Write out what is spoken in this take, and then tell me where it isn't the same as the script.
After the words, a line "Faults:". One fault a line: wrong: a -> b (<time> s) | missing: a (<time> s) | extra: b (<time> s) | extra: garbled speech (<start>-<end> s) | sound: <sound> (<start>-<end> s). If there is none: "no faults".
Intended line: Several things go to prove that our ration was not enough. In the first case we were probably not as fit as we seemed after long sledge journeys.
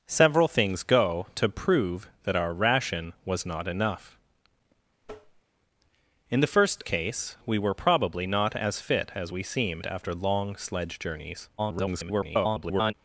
Several things go to prove that our ration was not enough. In the first case we were probably not as fit as we seemed after long sledge journeys. [garbled]
Faults:
sound: tap (5.0-5.4 s)
extra: garbled speech (11.6-12.9 s)